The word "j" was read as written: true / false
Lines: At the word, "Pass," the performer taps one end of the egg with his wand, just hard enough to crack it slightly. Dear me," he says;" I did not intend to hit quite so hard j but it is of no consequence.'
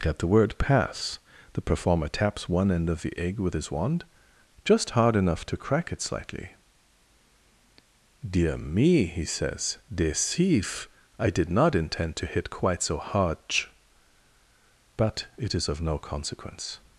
false